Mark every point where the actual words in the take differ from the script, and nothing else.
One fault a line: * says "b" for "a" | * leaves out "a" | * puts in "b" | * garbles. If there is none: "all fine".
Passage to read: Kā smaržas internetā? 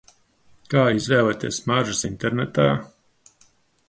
* puts in "izvēlēties"